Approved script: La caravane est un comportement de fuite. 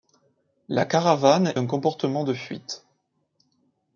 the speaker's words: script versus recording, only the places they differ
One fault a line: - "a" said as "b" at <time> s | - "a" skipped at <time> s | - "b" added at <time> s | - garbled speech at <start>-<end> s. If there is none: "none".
- "est" skipped at 1.5 s